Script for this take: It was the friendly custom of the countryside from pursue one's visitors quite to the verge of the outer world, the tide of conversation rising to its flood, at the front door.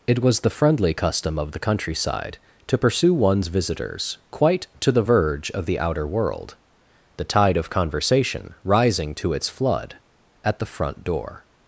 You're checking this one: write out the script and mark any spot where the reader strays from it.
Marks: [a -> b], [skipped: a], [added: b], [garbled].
It was the friendly custom of the countryside [from -> to] pursue one's visitors quite to the verge of the outer world, the tide of conversation rising to its flood, at the front door.